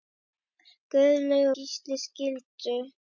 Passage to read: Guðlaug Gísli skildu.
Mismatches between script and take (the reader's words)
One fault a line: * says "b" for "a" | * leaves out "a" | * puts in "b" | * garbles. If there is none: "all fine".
all fine